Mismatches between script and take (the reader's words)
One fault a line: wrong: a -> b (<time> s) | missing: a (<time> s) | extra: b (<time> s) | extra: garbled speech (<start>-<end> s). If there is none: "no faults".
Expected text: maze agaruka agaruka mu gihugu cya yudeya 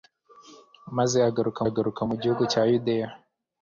no faults